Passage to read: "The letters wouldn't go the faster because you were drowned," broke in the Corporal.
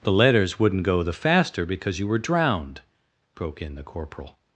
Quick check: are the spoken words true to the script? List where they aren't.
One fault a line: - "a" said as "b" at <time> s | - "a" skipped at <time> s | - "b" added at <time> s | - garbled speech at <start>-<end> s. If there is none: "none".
none